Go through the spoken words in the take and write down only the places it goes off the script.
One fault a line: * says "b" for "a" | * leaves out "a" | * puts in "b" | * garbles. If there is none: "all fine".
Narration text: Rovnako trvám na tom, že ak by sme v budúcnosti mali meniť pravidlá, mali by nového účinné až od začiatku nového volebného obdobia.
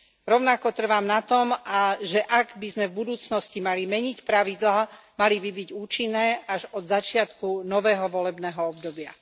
* says "byť" for "nového"